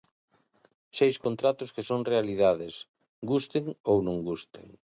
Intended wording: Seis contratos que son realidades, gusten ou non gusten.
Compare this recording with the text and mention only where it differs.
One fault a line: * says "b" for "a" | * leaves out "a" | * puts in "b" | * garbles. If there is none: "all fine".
all fine